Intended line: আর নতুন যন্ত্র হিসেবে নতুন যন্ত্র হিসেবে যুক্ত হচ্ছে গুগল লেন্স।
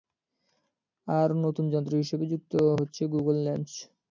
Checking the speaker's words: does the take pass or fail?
fail